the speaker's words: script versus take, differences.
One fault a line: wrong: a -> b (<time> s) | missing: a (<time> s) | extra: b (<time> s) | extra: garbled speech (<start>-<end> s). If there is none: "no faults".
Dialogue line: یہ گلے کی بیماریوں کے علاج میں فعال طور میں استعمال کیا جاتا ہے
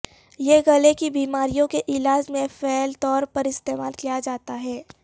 wrong: میں -> پر (3.2 s)